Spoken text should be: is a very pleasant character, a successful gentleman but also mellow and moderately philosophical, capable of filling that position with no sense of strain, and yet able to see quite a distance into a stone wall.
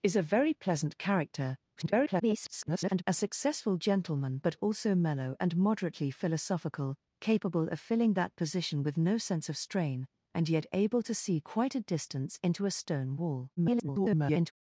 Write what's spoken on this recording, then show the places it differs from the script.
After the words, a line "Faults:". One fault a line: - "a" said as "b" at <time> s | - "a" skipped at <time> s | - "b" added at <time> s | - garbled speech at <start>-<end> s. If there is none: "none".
is a very pleasant character, [garbled] a successful gentleman but also mellow and moderately philosophical, capable of filling that position with no sense of strain, and yet able to see quite a distance into a stone wall. [garbled]
Faults:
- garbled speech at 1.8-3.0 s
- garbled speech at 13.6-14.5 s